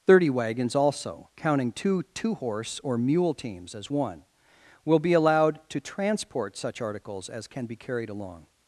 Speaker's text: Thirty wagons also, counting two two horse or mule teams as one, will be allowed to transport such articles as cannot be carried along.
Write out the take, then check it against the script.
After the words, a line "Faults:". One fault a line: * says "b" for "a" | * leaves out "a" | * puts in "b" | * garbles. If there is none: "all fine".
Thirty wagons also, counting two two horse or mule teams as one, will be allowed to transport such articles as can be carried along.
Faults:
* says "can" for "cannot"